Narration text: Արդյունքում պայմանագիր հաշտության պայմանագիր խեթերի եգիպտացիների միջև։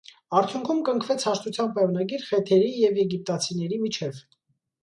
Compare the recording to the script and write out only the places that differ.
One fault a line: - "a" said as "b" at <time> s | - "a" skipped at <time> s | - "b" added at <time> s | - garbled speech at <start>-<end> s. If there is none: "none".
- "պայմանագիր" said as "կնքվեց" at 0.9 s
- "և" added at 2.8 s